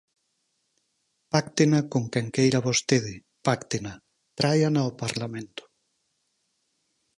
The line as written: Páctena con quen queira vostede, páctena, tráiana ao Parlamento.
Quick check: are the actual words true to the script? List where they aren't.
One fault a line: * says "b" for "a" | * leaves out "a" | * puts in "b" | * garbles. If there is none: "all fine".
all fine